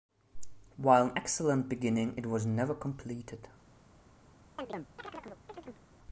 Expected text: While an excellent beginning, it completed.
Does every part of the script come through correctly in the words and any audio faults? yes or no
no